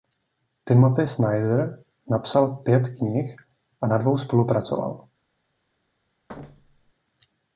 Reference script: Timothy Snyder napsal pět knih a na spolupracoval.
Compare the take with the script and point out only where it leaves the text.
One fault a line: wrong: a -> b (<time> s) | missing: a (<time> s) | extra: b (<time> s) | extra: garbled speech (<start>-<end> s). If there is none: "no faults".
extra: dvou (4.0 s)